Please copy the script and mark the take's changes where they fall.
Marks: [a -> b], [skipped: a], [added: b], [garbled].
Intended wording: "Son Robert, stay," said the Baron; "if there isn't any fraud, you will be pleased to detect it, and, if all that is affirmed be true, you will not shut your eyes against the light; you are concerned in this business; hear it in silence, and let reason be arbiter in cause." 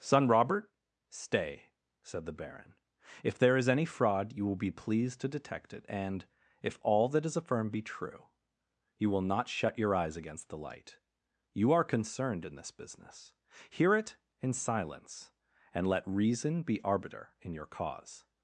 "Son Robert, stay," said the Baron; "if there [isn't -> is] any fraud, you will be pleased to detect it, and, if all that is affirmed be true, you will not shut your eyes against the light; you are concerned in this business; hear it in silence, and let reason be arbiter in [added: your] cause."